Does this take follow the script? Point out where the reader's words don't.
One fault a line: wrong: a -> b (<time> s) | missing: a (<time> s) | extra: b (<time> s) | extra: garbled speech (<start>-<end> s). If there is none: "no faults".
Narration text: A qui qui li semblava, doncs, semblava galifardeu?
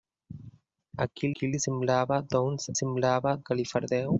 no faults